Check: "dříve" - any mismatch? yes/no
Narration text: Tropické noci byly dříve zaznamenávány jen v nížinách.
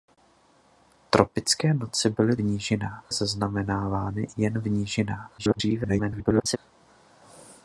yes